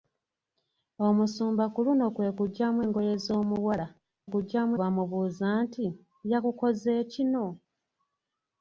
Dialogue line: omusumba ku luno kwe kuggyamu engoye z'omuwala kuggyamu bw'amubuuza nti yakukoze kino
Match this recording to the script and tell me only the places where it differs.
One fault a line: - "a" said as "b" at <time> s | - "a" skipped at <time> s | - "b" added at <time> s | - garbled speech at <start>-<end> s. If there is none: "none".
none